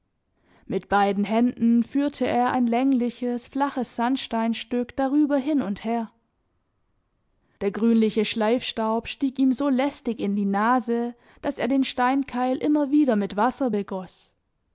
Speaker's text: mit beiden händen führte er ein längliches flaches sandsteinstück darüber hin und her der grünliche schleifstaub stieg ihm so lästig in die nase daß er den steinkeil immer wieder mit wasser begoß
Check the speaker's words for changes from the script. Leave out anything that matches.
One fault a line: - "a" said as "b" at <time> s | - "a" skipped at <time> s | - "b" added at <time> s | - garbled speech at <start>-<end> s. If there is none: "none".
none